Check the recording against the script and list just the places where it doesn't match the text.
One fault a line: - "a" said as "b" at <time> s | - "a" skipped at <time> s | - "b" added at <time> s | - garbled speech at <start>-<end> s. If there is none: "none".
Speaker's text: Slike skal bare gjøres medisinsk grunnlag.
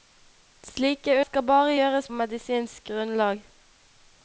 none